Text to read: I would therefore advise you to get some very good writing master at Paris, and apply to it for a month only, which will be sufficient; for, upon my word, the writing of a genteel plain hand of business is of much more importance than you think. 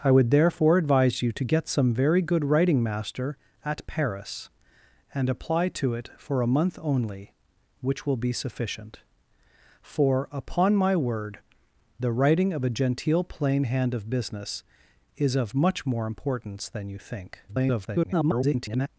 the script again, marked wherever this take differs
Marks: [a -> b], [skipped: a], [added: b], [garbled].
I would therefore advise you to get some very good writing master at Paris, and apply to it for a month only, which will be sufficient; for, upon my word, the writing of a genteel plain hand of business is of much more importance than you think. [garbled]